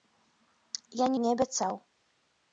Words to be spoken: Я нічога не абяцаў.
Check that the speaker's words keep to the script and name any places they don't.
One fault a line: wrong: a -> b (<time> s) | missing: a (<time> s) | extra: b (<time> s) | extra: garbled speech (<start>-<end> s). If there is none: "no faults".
missing: нічога (1.1 s)